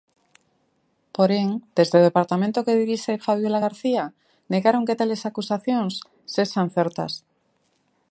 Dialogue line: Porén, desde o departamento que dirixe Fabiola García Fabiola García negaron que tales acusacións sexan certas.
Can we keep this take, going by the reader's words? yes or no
no